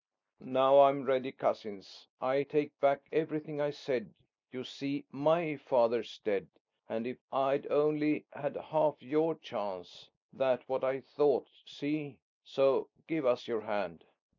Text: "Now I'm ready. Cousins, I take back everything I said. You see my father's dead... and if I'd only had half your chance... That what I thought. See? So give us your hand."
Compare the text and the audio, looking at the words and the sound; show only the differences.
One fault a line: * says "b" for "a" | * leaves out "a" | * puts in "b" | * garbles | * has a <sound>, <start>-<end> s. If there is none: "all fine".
all fine